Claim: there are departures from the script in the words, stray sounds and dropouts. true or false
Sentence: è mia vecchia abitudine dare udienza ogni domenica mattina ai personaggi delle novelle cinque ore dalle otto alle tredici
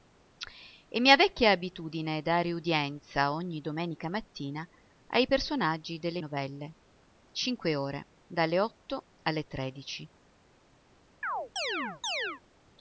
true